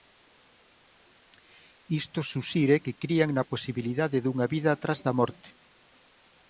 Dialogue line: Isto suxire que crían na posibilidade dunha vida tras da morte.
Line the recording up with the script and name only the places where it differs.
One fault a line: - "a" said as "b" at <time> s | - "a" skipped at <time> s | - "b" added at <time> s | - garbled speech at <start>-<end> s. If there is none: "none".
none